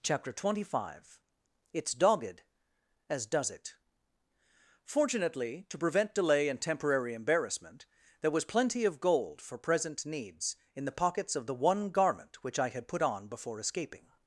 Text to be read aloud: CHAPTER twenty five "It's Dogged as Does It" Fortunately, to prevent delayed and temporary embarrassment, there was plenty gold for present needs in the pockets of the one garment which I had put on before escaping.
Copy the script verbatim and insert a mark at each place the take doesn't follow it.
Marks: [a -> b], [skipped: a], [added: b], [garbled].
CHAPTER twenty five "It's Dogged as Does It" Fortunately, to prevent [delayed -> delay] and temporary embarrassment, there was plenty [added: of] gold for present needs in the pockets of the one garment which I had put on before escaping.